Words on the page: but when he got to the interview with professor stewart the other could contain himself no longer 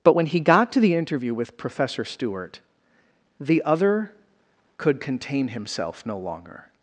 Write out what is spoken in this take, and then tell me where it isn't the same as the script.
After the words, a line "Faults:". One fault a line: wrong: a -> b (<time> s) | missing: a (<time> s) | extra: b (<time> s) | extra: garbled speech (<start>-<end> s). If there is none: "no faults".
but when he got to the interview with professor stewart the other could contain himself no longer
Faults:
no faults